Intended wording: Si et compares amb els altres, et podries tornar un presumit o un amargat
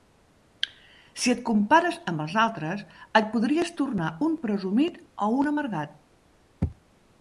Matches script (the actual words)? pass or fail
pass